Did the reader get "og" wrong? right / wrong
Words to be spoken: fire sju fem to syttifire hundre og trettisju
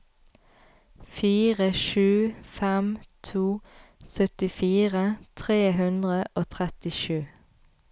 right